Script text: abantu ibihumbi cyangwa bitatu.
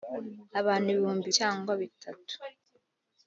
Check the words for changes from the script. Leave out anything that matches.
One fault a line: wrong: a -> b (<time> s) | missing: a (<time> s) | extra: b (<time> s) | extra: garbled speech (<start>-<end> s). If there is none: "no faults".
no faults